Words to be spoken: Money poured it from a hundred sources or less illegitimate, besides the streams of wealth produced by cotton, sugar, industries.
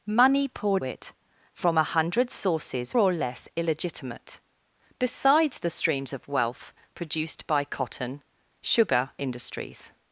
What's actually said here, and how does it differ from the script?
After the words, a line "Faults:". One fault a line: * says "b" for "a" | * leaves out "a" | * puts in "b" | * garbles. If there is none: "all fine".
Money poured it from a hundred sources or less illegitimate, besides the streams of wealth produced by cotton, sugar, industries.
Faults:
all fine